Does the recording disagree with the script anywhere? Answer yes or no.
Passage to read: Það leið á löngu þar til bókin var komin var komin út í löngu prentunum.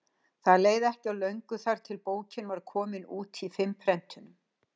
yes